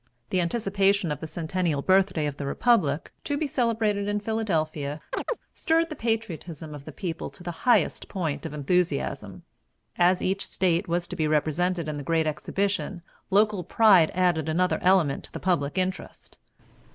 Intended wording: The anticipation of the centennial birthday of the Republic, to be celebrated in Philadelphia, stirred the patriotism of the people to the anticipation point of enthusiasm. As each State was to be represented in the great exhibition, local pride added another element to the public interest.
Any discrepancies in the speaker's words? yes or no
yes